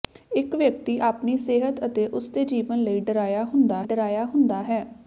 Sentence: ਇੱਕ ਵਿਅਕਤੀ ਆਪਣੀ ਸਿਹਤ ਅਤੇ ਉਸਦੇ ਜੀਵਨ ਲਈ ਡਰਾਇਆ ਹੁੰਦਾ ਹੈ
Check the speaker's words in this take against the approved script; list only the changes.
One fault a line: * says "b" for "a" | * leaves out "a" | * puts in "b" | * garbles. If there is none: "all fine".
* puts in "ਡਰਾਇਆ ਹੁੰਦਾ"